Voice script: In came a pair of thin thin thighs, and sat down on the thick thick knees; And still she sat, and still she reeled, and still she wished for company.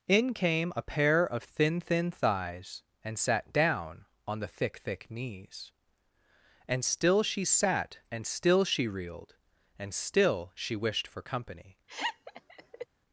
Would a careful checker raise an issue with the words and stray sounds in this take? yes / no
yes